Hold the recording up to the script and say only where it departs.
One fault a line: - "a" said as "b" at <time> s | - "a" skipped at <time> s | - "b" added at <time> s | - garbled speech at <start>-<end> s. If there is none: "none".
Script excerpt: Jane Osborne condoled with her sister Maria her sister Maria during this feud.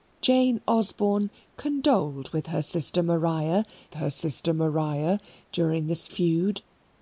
none